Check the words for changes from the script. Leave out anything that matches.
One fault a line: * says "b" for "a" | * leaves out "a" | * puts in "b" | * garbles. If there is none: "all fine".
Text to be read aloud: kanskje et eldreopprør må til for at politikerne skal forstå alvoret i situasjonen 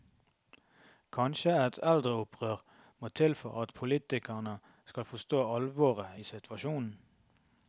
all fine